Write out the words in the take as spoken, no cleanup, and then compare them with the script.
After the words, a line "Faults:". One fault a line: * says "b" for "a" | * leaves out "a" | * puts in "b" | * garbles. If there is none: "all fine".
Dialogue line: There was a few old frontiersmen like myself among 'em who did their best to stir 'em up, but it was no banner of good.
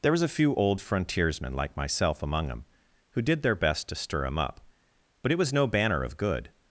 There was a few old frontiersmen like myself among 'em who did their best to stir 'em up, but it was no banner of good.
Faults:
all fine